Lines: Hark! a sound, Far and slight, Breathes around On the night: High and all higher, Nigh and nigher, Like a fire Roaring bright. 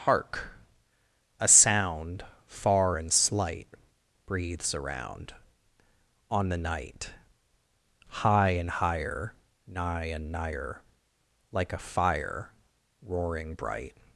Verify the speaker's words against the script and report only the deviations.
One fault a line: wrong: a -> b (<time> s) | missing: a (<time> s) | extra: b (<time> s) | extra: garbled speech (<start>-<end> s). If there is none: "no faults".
missing: all (8.7 s)